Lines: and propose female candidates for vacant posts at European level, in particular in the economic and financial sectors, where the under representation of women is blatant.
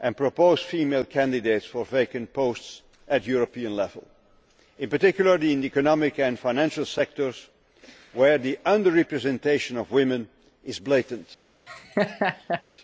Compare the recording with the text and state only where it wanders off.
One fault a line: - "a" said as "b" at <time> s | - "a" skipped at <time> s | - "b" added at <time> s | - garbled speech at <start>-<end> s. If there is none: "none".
none